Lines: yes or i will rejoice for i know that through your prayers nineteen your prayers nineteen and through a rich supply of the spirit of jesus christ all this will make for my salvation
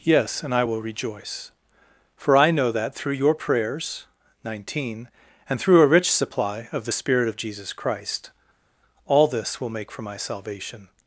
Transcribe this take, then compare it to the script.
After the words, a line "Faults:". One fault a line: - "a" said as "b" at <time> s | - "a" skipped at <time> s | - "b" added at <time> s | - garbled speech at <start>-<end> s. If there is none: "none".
yes and i will rejoice for i know that through your prayers nineteen and through a rich supply of the spirit of jesus christ all this will make for my salvation
Faults:
- "or" said as "and" at 0.4 s
- "your prayers nineteen" skipped at 5.1 s